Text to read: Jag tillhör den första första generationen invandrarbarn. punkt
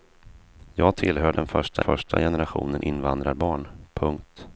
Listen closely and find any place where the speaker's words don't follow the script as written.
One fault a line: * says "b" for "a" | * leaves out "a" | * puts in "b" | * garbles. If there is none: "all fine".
all fine